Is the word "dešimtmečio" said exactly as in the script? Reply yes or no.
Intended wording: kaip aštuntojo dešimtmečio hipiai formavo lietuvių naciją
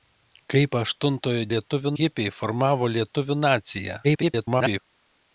no